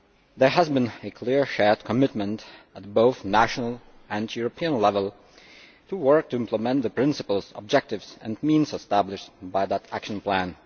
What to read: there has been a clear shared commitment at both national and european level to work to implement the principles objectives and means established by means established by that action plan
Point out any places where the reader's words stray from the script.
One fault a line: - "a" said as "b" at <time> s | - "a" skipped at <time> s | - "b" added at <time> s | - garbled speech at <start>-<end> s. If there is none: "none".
- "means established by" skipped at 9.7 s